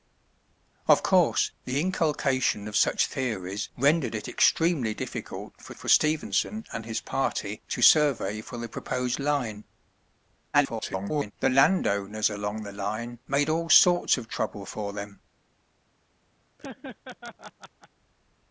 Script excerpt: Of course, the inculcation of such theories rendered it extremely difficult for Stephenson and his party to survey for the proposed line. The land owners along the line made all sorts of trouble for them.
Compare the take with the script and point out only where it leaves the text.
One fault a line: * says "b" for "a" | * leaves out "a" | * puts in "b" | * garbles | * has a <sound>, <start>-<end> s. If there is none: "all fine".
* puts in "for"
* garbles
* has a laugh, 16.6-17.9 s